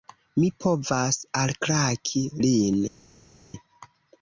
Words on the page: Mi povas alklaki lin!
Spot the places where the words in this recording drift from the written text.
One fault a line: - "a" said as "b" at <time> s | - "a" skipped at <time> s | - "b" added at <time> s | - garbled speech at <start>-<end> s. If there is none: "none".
none